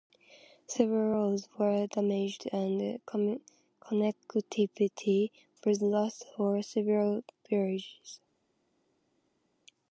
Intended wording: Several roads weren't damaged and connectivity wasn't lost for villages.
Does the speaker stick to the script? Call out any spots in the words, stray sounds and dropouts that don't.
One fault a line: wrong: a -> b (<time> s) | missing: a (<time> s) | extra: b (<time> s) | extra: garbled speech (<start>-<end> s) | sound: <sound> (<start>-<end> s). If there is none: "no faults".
wrong: weren't -> were (1.6 s)
wrong: wasn't -> was (5.6 s)
extra: several (6.6 s)